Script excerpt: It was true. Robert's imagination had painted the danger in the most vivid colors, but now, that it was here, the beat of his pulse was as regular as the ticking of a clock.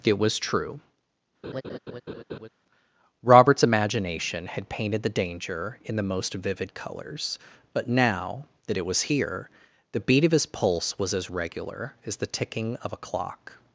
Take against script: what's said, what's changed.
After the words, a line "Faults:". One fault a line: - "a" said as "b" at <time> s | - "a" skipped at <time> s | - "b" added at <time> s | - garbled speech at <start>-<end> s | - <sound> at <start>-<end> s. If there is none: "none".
It was true. Robert's imagination had painted the danger in the most vivid colors, but now, that it was here, the beat of his pulse was as regular as the ticking of a clock.
Faults:
- laugh at 1.4-2.5 s